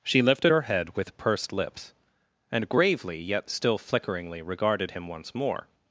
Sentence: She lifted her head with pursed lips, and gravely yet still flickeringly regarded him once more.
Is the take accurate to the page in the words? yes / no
yes